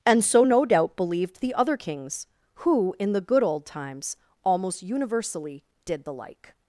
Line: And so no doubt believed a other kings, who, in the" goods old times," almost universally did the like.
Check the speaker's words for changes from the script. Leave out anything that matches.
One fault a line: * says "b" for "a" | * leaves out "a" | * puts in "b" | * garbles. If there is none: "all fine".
* says "the" for "a"
* says "good" for "goods"